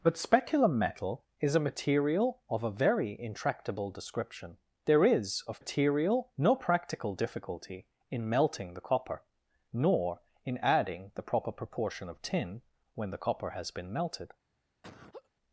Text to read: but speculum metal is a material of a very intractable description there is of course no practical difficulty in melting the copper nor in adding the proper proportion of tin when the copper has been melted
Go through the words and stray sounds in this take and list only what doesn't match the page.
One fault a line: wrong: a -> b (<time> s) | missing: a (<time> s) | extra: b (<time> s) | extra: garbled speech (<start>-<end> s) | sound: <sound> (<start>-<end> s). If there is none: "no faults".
wrong: course -> material (5.6 s)
sound: laugh (14.8-15.3 s)